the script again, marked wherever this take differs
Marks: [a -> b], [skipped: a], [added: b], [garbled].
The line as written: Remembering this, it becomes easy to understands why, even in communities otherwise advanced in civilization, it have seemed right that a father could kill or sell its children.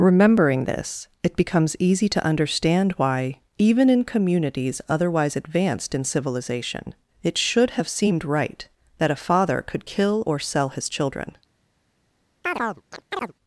Remembering this, it becomes easy to [understands -> understand] why, even in communities otherwise advanced in civilization, it [added: should] have seemed right that a father could kill or sell [its -> his] children.